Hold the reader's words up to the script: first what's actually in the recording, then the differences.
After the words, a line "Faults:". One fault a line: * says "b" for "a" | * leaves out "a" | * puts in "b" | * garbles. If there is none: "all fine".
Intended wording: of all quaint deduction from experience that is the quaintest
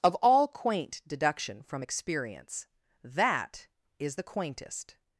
of all quaint deduction from experience that is the quaintest
Faults:
all fine